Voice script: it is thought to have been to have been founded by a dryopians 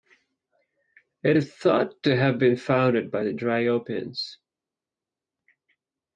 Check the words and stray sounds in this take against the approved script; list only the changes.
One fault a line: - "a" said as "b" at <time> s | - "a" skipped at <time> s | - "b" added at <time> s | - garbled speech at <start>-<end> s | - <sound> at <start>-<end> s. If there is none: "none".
- "to have been" skipped at 2.6 s
- "a" said as "the" at 3.2 s